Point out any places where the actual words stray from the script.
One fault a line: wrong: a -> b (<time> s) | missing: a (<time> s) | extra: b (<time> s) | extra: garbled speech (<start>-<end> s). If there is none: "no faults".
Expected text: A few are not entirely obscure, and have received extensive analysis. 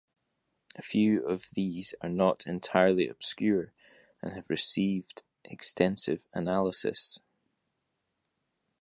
extra: of these (1.2 s)